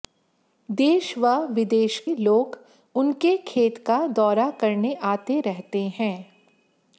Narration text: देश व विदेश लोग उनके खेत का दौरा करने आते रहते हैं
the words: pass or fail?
pass